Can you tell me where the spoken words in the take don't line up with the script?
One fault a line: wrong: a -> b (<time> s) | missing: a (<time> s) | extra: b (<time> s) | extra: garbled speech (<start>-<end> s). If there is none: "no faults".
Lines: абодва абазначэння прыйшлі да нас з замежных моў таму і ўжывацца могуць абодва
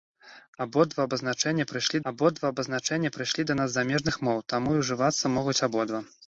extra: абодва абазначэння прыйшлі (2.1 s)